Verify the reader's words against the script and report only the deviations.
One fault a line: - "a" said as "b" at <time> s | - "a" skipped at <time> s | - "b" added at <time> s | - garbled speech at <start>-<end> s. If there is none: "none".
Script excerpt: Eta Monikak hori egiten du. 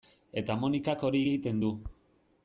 none